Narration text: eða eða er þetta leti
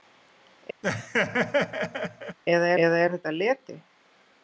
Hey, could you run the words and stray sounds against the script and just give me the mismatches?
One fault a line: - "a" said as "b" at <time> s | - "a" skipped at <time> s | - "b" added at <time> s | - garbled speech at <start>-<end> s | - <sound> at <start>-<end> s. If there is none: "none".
- laugh at 0.8-2.4 s